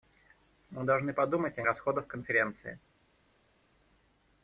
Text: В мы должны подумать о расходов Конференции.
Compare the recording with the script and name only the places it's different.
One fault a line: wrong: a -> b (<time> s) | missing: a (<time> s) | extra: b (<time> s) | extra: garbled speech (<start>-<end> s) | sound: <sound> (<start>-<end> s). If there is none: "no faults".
no faults